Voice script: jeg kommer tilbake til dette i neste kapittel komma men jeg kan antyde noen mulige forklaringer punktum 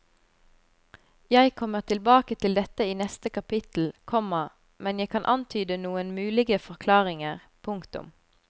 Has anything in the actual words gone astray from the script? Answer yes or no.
no